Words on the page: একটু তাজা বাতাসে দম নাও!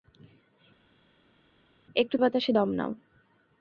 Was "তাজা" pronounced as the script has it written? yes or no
no